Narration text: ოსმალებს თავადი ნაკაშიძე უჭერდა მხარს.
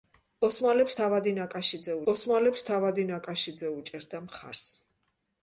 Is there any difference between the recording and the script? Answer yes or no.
yes